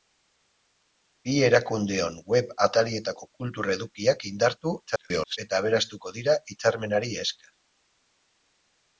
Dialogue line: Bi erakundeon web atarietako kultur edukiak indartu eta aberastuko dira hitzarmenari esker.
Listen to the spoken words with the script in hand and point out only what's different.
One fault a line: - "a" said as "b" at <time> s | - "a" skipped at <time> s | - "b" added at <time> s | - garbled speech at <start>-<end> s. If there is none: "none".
- garbled speech at 4.8-5.4 s